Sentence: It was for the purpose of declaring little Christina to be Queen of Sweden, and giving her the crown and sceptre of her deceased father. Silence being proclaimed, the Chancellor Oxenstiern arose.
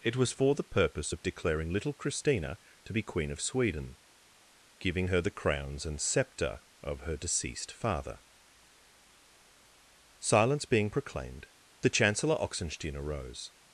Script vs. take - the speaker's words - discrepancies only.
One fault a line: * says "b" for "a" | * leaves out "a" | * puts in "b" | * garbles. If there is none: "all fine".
* leaves out "and"
* says "crowns" for "crown"